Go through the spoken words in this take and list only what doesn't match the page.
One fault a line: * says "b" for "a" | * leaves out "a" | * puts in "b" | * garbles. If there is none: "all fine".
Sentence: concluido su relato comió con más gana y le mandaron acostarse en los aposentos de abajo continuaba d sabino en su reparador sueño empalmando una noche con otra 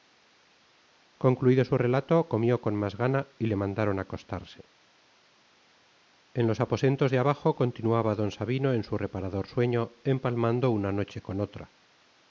all fine